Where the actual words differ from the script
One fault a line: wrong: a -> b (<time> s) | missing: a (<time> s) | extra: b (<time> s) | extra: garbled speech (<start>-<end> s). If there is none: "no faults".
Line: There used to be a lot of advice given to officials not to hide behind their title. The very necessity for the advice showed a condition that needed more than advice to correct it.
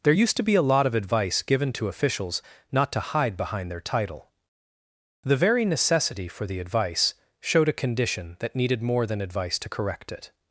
no faults